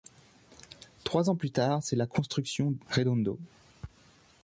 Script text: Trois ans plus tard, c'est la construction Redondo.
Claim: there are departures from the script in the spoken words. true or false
false